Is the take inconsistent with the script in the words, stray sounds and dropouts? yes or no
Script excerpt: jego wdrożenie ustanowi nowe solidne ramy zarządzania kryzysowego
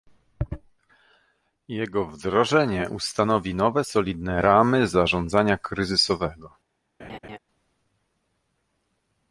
yes